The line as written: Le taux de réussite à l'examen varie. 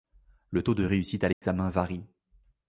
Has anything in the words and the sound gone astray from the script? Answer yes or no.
yes